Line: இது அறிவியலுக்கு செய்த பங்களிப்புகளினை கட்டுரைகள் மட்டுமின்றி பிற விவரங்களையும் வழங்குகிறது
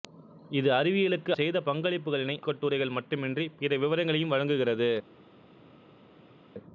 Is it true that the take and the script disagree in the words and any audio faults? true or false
false